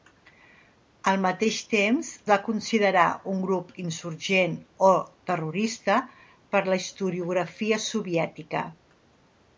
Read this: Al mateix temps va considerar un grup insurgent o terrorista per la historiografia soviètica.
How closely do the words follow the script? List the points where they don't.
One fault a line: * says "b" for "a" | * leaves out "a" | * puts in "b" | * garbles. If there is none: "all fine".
all fine